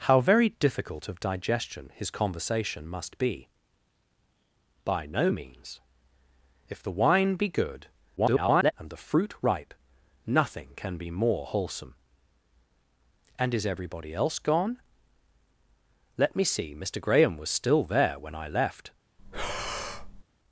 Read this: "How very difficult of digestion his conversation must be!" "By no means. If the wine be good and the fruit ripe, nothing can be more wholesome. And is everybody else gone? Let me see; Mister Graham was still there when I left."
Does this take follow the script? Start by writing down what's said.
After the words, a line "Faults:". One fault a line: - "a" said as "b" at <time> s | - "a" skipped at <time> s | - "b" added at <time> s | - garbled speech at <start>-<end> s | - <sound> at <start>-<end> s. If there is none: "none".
"How very difficult of digestion his conversation must be!" "By no means. If the wine be good [garbled] and the fruit ripe, nothing can be more wholesome. And is everybody else gone? Let me see; Mister Graham was still there when I left."
Faults:
- garbled speech at 8.2-8.7 s
- breath at 19.2-20.2 s